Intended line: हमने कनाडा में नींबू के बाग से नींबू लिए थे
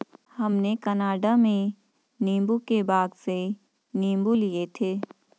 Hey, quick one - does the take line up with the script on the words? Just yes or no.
yes